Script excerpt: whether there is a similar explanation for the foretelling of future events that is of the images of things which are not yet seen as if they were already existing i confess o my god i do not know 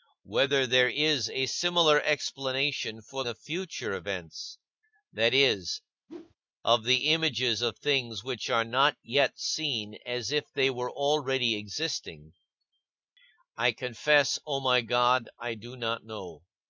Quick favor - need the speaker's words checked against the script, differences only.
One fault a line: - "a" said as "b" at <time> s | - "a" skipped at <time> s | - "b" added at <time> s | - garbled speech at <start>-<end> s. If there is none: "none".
- "the foretelling" skipped at 3.2 s